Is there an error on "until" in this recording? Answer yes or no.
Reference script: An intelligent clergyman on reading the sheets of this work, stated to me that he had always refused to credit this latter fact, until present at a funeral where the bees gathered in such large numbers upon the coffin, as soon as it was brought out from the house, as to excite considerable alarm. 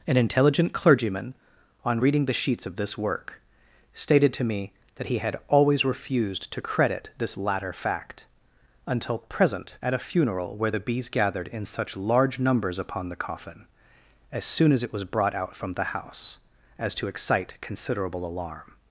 no